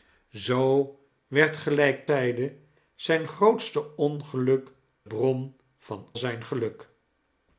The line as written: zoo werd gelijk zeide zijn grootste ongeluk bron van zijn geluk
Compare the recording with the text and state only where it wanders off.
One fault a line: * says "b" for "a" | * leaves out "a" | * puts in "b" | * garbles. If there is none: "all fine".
all fine